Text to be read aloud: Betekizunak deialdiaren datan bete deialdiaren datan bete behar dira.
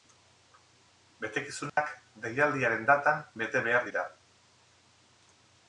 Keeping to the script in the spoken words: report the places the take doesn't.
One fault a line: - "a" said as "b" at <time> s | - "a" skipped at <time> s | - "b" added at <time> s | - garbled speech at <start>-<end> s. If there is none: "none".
- "deialdiaren datan bete" skipped at 3.7 s